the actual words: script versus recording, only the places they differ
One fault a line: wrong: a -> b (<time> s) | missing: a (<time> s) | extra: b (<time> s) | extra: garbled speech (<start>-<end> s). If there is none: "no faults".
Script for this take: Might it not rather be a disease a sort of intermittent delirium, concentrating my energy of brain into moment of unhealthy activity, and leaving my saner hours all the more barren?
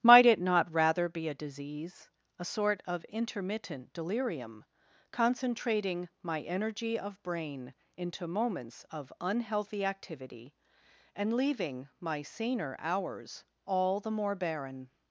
wrong: moment -> moments (8.3 s)